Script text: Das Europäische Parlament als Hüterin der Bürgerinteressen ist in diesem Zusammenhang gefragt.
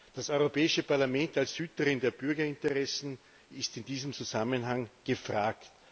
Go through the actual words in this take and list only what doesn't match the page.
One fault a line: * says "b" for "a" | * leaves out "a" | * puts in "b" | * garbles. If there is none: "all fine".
all fine